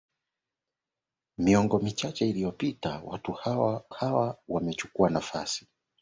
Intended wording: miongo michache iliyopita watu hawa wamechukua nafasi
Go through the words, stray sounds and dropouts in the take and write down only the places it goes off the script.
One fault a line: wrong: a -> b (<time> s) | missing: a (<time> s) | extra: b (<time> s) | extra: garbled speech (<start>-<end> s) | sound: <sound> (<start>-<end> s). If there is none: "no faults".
extra: hawa (3.9 s)